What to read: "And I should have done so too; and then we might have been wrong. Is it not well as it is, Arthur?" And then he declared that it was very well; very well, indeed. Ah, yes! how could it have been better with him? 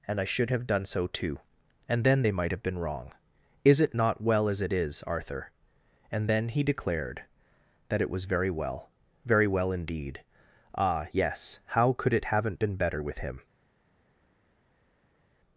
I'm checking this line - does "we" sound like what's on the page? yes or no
no